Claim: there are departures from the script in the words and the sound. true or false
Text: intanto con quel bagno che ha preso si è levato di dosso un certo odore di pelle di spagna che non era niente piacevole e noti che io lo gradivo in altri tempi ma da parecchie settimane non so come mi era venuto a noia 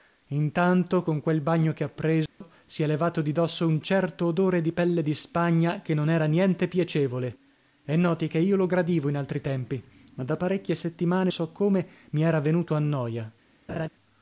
true